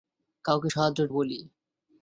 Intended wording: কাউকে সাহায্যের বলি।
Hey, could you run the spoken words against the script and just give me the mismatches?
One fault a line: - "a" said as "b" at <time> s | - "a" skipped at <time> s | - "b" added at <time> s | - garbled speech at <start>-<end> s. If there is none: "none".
none